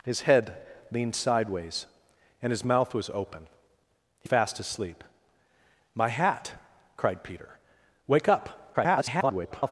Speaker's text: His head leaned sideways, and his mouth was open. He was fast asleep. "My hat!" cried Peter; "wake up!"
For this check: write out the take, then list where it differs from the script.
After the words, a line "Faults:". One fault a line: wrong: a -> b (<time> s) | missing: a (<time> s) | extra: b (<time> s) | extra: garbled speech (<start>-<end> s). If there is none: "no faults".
His head leaned sideways, and his mouth was open. He fast asleep. "My hat!" cried Peter; "wake up!" [garbled]
Faults:
missing: was (4.3 s)
extra: garbled speech (8.7-9.7 s)